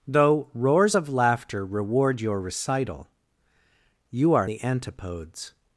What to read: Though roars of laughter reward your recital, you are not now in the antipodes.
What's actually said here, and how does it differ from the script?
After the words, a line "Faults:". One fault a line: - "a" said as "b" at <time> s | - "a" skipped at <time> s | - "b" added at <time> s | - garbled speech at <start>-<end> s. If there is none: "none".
Though roars of laughter reward your recital, you are the antipodes.
Faults:
- "not now in" skipped at 4.5 s